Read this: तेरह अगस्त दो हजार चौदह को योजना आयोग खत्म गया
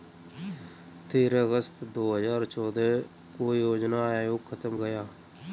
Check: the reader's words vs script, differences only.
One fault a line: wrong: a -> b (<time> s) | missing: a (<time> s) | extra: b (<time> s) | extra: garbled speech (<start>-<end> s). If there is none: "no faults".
no faults